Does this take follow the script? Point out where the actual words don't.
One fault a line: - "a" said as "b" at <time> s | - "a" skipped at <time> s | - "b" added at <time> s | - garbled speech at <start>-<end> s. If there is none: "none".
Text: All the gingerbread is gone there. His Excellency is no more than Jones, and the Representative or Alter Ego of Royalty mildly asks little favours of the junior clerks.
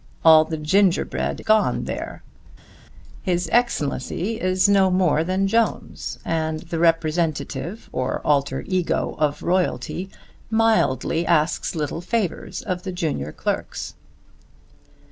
- "is" skipped at 1.4 s